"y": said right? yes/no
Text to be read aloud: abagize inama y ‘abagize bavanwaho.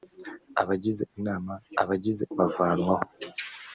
yes